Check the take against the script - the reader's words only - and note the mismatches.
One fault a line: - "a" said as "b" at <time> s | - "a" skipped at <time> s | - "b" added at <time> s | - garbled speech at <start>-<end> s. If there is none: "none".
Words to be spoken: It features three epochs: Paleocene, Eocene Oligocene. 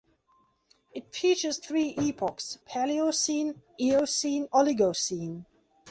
none